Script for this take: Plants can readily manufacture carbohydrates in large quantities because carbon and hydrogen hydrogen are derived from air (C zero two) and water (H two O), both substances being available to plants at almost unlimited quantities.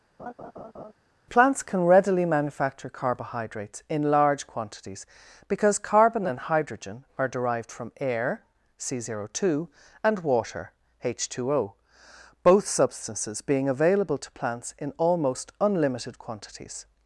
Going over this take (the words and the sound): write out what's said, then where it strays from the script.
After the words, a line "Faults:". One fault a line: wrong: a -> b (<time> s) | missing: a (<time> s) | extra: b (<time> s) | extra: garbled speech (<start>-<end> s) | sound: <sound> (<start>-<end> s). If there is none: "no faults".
Plants can readily manufacture carbohydrates in large quantities because carbon and hydrogen are derived from air (C zero two) and water (H two O), both substances being available to plants in almost unlimited quantities.
Faults:
sound: laugh (0.2-0.9 s)
missing: hydrogen (7.0 s)
wrong: at -> in (14.8 s)